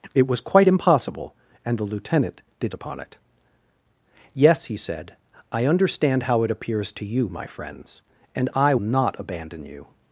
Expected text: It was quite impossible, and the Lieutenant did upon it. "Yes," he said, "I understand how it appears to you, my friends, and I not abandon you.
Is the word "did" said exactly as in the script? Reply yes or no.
yes